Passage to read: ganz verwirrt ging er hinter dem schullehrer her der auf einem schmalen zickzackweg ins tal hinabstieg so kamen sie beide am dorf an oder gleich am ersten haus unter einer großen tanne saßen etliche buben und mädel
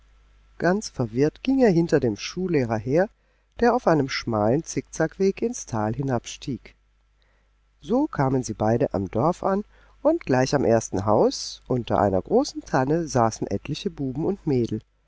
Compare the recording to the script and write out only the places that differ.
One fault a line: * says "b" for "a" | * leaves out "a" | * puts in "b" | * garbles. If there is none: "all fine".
* says "und" for "oder"